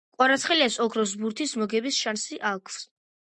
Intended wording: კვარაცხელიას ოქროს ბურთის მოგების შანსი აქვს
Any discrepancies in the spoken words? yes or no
no